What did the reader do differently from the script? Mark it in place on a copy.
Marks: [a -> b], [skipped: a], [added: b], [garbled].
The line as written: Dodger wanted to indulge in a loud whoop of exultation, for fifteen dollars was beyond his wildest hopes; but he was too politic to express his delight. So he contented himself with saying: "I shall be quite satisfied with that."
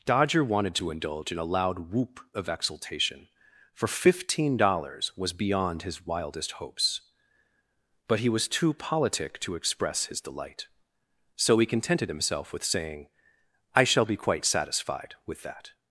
Dodger wanted to indulge in a loud whoop of exultation, for fifteen dollars was beyond his wildest hopes; but he was too politic to express his delight. So he contented himself with saying: "I shall be quite satisfied with that."